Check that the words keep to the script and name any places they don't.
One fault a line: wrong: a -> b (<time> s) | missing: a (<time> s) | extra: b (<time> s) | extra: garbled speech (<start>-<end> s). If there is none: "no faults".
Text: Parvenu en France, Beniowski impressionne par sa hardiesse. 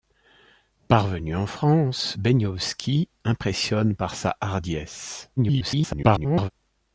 extra: garbled speech (5.4-6.5 s)